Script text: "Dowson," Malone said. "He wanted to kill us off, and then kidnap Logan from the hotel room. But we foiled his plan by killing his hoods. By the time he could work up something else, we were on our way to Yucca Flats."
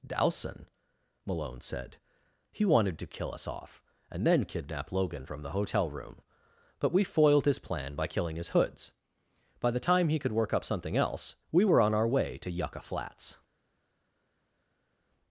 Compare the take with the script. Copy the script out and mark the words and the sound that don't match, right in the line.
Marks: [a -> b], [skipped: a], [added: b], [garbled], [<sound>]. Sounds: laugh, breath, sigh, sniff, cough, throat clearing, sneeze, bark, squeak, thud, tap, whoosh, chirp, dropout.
"Dowson," Malone said. "He wanted to kill us off, and then kidnap Logan from the hotel room. But we foiled his plan by killing his hoods. By the time he could work up something else, we were on our way to Yucca Flats."